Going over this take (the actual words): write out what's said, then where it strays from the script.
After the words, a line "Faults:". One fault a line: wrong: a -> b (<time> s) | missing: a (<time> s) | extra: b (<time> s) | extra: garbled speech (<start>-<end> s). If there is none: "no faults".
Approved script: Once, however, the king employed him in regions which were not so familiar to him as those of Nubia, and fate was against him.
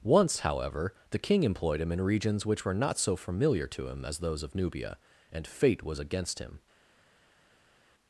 Once, however, the king employed him in regions which were not so familiar to him as those of Nubia, and fate was against him.
Faults:
no faults